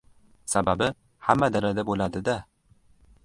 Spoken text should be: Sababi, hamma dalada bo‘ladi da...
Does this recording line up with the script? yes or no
yes